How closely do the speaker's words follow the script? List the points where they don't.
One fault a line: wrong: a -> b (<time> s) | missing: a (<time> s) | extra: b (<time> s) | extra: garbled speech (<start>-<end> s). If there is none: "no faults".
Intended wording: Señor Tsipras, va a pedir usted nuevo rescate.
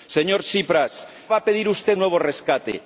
no faults